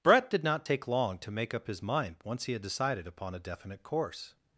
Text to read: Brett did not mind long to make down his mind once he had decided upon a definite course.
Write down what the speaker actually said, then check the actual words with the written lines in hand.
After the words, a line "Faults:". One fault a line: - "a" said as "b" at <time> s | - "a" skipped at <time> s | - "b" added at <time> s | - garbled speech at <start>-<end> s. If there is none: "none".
Brett did not take long to make up his mind once he had decided upon a definite course.
Faults:
- "mind" said as "take" at 0.6 s
- "down" said as "up" at 1.5 s